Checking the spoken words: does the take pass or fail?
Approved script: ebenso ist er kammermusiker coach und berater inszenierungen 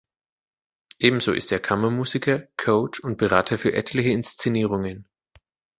fail